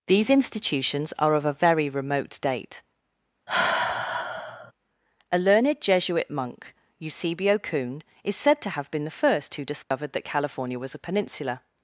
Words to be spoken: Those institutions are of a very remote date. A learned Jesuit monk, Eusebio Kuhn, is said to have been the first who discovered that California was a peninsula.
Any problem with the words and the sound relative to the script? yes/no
yes